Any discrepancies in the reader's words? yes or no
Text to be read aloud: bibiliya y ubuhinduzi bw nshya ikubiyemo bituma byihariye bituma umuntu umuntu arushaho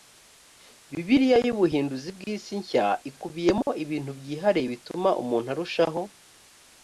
yes